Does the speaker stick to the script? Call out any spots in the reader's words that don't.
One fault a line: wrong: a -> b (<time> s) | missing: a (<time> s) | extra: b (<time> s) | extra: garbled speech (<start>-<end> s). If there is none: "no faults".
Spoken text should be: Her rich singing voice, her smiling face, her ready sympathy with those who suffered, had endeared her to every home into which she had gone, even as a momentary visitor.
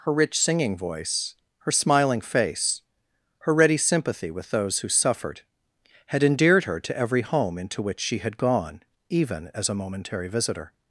no faults